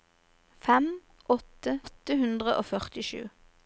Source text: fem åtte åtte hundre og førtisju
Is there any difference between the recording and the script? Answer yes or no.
no